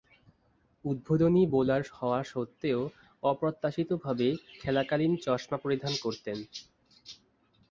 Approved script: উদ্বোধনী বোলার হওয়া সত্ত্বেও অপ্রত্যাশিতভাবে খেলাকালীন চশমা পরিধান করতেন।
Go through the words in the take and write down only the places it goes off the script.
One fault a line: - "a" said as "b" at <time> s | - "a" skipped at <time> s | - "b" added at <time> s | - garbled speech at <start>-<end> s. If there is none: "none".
none